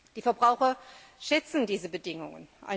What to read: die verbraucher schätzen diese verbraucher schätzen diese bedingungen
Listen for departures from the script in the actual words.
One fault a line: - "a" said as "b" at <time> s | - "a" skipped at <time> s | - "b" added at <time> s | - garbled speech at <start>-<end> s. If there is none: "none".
- "verbraucher schätzen diese" skipped at 1.9 s